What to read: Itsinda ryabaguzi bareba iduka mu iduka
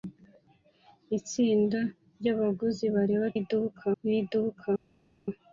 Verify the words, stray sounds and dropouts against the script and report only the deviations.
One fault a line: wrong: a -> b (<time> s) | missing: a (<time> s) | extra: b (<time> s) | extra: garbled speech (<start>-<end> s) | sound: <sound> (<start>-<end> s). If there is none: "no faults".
no faults